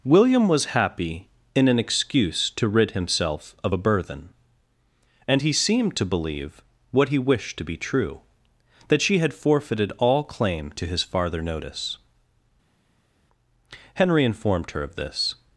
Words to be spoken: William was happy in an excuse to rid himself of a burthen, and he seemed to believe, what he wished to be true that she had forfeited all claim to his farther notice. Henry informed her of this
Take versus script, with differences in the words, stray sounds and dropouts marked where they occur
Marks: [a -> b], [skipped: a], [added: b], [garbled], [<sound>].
William was happy in an excuse to rid himself of a burthen, and he seemed to believe, what he wished to be true that she had forfeited all claim to his farther notice. Henry informed her of this